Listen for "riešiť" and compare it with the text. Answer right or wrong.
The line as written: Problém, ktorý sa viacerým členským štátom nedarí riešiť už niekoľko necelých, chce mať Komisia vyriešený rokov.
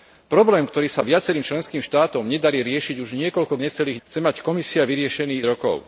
right